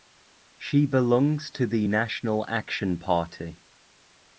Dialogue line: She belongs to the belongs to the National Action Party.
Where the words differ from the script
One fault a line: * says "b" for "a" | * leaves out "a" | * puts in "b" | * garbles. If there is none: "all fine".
* leaves out "belongs to the"